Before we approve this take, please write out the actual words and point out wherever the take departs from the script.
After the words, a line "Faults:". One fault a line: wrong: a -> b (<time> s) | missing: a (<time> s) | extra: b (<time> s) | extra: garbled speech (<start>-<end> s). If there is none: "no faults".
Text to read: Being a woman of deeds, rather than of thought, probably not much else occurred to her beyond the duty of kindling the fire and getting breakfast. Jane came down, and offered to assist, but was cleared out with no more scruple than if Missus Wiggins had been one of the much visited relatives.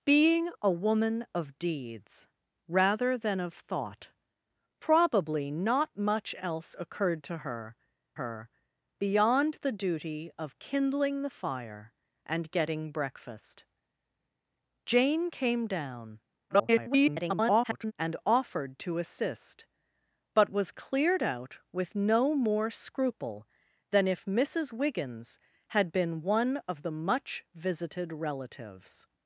Being a woman of deeds, rather than of thought, probably not much else occurred to her her beyond the duty of kindling the fire and getting breakfast. Jane came down, [garbled] and offered to assist, but was cleared out with no more scruple than if Missus Wiggins had been one of the much visited relatives.
Faults:
extra: her (8.1 s)
extra: garbled speech (16.5-17.9 s)